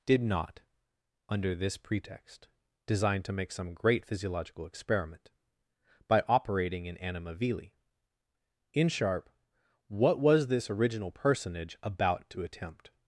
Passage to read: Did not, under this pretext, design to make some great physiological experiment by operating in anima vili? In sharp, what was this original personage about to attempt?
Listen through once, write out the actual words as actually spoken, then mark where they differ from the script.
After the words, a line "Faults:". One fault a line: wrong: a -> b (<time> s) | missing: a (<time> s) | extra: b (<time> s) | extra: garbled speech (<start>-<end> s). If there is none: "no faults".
Did not, under this pretext, design to make some great physiological experiment by operating in anima vili? In sharp, what was this original personage about to attempt?
Faults:
no faults